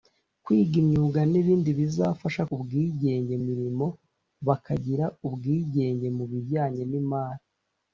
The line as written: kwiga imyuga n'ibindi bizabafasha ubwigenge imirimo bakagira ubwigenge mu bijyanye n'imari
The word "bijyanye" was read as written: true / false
true